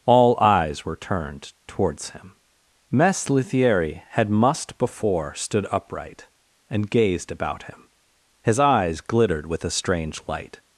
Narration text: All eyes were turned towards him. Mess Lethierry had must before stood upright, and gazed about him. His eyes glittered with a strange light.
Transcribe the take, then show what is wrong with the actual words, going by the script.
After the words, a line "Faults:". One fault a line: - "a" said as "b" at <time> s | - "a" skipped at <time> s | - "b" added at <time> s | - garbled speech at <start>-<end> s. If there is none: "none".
All eyes were turned towards him. Mess Lethierry had must before stood upright, and gazed about him. His eyes glittered with a strange light.
Faults:
none